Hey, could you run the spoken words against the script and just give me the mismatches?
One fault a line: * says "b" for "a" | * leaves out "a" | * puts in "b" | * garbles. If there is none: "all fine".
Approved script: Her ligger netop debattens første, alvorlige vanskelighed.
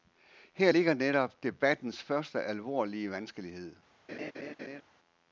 all fine